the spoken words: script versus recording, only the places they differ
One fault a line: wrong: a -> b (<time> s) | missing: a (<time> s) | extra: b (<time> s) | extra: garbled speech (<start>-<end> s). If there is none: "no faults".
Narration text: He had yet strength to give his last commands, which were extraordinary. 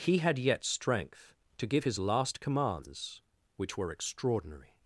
no faults